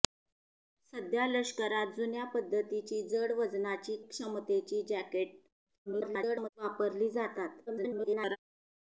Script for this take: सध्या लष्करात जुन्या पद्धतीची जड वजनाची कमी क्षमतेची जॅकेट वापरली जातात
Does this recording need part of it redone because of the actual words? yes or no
yes